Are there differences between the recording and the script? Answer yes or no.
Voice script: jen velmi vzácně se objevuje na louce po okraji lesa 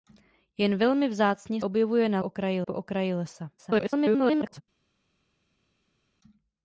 yes